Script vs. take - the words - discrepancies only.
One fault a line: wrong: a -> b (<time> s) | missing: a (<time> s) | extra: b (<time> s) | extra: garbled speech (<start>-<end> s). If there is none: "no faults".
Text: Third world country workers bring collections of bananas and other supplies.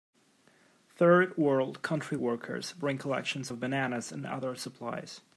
no faults